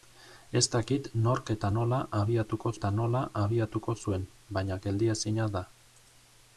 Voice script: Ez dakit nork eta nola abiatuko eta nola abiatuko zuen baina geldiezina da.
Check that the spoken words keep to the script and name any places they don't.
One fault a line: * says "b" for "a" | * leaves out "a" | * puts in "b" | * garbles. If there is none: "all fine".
all fine